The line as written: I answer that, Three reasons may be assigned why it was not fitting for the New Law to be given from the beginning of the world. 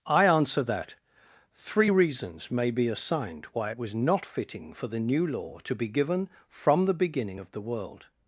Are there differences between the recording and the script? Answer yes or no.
no